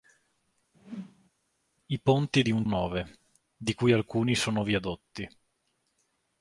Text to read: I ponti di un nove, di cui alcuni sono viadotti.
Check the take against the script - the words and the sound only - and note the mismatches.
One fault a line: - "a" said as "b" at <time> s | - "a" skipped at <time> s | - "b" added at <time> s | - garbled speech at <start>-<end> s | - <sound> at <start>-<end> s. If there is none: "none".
- whoosh at 0.7-1.3 s